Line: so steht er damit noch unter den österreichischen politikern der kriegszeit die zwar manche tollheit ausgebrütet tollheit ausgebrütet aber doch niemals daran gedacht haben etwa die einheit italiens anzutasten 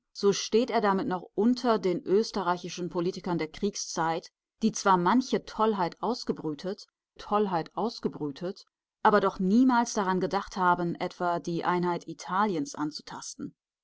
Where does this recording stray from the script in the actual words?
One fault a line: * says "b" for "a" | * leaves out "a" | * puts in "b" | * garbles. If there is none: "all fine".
all fine